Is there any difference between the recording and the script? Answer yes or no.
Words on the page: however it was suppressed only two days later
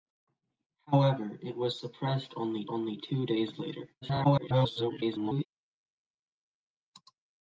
yes